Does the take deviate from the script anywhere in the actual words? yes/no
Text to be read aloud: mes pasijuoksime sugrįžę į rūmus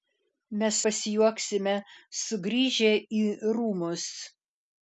no